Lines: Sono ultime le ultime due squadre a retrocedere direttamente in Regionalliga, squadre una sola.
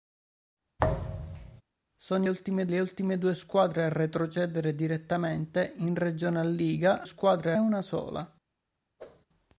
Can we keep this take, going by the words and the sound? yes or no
no